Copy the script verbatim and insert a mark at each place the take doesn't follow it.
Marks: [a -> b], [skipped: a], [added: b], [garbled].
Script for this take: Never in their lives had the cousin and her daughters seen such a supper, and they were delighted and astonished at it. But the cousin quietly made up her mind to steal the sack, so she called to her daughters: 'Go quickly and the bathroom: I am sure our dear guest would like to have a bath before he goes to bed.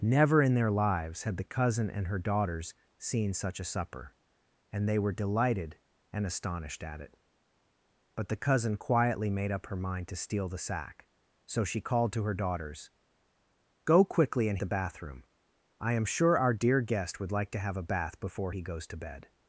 Never in their lives had the cousin and her daughters seen such a supper, and they were delighted and astonished at it. But the cousin quietly made up her mind to steal the sack, so she called to her daughters: 'Go quickly and the bathroom: I am sure our dear guest would like to have a bath before he goes to bed.